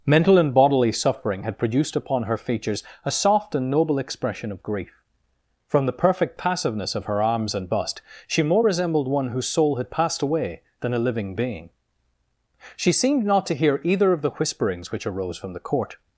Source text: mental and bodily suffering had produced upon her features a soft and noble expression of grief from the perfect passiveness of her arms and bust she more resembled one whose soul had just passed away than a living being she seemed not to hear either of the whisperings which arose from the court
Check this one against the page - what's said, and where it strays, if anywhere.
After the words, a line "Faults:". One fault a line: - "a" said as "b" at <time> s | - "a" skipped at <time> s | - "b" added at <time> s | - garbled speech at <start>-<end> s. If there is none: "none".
mental and bodily suffering had produced upon her features a soft and noble expression of grief from the perfect passiveness of her arms and bust she more resembled one whose soul had passed away than a living being she seemed not to hear either of the whisperings which arose from the court
Faults:
- "just" skipped at 9.9 s